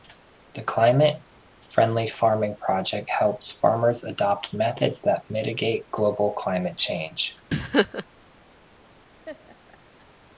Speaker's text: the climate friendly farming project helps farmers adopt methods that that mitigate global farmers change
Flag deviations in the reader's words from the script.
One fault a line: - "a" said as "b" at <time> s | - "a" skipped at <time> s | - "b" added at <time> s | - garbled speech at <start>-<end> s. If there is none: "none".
- "that" skipped at 5.2 s
- "farmers" said as "climate" at 6.3 s